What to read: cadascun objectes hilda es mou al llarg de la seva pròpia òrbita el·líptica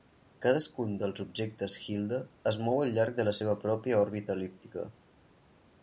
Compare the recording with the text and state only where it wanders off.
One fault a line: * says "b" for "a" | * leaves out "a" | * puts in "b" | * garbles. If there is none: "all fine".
* puts in "dels"